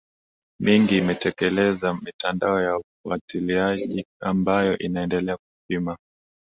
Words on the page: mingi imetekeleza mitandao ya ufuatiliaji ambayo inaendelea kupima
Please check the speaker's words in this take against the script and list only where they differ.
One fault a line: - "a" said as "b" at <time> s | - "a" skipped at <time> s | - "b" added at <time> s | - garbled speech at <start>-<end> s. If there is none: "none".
none